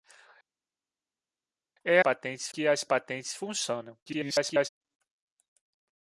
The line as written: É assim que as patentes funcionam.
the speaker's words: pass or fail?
fail